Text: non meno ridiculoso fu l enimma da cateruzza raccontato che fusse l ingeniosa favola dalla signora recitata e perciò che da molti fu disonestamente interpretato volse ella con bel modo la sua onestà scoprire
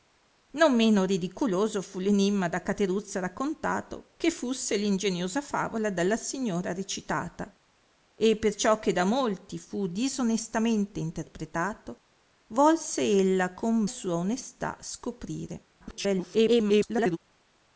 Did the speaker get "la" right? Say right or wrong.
wrong